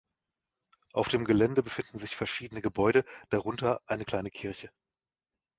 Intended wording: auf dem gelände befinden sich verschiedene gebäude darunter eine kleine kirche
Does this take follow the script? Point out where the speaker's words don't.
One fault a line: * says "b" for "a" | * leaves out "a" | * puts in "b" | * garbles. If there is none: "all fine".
all fine